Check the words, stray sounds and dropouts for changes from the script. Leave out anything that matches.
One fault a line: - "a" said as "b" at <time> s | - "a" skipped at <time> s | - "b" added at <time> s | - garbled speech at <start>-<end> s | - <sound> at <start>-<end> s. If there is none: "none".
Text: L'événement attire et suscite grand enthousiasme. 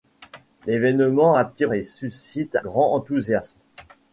none